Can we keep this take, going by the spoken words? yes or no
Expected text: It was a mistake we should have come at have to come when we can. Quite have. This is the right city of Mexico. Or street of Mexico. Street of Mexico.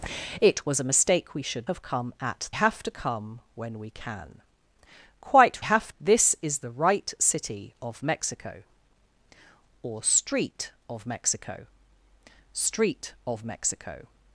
yes